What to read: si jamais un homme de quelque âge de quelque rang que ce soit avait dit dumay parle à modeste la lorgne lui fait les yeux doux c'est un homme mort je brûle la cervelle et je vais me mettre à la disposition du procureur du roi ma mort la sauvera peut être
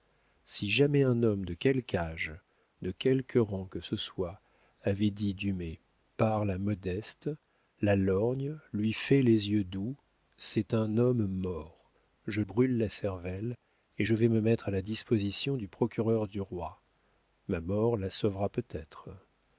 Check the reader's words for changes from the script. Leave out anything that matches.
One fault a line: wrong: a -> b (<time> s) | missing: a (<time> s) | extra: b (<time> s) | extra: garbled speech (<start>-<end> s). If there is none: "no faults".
no faults